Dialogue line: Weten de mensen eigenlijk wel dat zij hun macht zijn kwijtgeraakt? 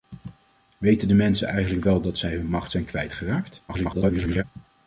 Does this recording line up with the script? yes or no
no